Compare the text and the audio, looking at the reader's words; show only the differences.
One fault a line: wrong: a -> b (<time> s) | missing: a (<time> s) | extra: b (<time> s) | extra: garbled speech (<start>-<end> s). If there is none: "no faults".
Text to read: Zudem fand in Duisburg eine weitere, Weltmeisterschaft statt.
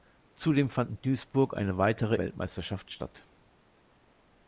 no faults